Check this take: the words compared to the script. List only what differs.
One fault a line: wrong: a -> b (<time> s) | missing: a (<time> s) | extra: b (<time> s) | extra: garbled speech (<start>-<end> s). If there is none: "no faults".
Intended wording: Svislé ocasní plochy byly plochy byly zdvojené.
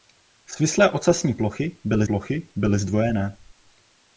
no faults